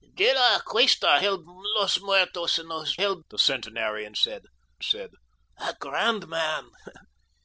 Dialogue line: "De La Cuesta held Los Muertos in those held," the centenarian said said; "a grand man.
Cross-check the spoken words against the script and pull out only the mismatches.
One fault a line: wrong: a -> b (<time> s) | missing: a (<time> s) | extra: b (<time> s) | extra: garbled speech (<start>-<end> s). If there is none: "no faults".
no faults